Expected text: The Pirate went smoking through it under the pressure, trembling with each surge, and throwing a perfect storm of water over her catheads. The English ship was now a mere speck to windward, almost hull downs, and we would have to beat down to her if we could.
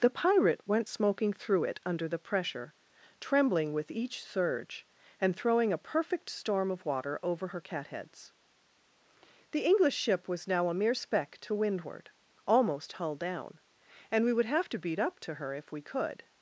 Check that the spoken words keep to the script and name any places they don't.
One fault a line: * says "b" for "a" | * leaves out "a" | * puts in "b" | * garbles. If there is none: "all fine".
* says "down" for "downs"
* says "up" for "down"